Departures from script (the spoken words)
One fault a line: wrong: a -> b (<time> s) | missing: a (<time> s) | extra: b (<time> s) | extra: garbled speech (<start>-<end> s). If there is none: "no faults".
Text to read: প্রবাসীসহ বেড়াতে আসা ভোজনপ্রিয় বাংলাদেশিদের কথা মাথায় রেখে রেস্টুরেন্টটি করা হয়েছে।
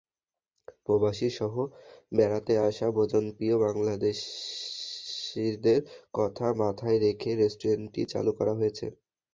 extra: চালু (8.1 s)